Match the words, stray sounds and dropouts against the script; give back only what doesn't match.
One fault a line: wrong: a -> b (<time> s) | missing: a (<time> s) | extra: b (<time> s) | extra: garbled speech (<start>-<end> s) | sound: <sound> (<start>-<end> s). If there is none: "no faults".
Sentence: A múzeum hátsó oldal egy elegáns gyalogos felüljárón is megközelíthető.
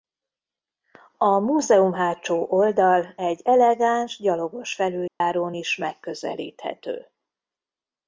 sound: dropout (5.1-5.2 s)